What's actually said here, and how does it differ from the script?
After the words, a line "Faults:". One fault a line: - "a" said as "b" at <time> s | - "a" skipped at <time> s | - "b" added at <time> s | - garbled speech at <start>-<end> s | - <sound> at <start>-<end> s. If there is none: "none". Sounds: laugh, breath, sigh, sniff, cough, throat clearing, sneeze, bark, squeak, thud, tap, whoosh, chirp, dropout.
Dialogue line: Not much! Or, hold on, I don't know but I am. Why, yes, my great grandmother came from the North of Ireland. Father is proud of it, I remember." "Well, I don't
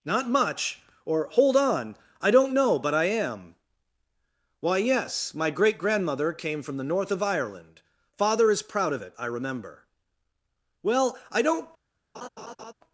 Not much! Or, hold on, I don't know but I am. Why, yes, my great grandmother came from the North of Ireland. Father is proud of it, I remember." "Well, I don't
Faults:
- laugh at 12.1-12.7 s